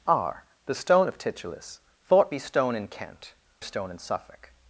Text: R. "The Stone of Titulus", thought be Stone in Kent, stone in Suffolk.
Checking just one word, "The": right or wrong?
right